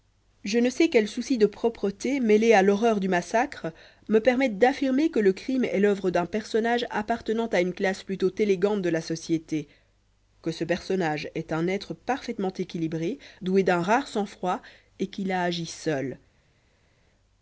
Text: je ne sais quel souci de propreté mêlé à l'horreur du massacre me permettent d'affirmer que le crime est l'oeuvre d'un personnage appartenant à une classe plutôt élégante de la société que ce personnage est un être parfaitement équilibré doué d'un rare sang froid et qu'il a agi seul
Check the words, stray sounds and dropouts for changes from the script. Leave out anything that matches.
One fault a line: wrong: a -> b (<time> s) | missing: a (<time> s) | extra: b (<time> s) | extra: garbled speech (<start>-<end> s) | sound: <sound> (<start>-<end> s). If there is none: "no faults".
no faults